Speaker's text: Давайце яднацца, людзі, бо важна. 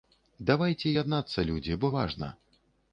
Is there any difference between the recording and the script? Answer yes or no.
no